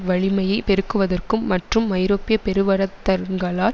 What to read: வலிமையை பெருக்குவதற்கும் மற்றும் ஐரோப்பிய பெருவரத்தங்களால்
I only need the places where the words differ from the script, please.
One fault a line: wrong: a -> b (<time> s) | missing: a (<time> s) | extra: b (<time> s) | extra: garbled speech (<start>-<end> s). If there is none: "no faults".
no faults